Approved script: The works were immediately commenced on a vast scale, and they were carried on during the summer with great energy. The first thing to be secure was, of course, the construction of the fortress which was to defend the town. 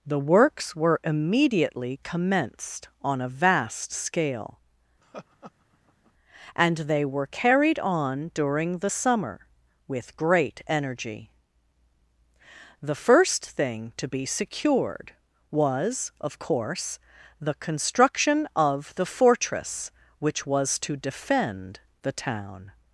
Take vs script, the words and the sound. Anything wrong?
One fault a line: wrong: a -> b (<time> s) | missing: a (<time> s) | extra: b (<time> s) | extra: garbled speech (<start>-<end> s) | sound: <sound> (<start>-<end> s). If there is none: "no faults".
sound: laugh (5.0-6.1 s)
wrong: secure -> secured (14.3 s)